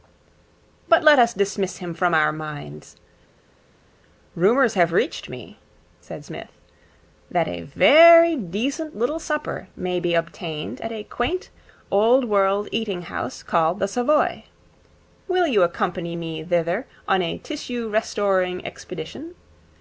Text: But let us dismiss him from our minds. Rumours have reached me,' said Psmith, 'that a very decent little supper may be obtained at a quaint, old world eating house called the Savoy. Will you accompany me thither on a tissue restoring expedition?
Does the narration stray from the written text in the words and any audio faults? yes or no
no